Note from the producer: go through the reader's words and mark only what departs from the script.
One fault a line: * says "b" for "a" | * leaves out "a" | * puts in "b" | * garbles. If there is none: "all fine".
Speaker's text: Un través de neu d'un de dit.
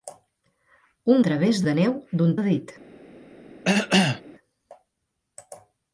all fine